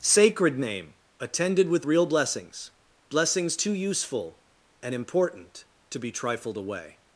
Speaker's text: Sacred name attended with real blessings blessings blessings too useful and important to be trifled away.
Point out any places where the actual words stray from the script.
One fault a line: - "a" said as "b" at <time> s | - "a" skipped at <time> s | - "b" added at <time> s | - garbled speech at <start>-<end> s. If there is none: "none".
- "blessings" skipped at 3.6 s